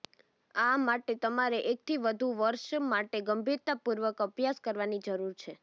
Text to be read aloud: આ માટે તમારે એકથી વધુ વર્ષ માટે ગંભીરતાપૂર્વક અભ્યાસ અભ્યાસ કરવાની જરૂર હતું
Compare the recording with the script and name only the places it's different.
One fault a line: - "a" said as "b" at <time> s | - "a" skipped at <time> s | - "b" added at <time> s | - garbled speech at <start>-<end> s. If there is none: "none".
- "અભ્યાસ" skipped at 4.6 s
- "હતું" said as "છે" at 5.4 s